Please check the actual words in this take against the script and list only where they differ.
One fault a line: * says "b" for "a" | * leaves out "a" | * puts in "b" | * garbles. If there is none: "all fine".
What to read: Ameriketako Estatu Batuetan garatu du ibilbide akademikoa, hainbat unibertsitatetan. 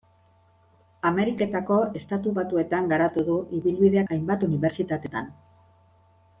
* leaves out "akademikoa"